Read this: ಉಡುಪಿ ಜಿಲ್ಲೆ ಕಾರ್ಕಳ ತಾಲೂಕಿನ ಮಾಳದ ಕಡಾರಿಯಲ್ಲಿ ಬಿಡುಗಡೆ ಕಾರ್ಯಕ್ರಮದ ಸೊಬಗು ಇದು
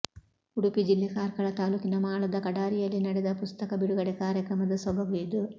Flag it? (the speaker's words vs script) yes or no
yes